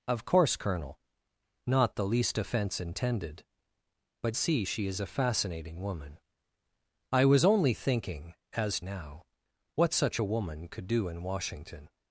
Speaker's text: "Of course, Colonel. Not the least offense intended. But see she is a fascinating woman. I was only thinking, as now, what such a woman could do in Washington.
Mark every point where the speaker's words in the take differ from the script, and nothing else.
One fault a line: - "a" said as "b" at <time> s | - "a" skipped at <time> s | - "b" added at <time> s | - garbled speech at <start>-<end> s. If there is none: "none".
none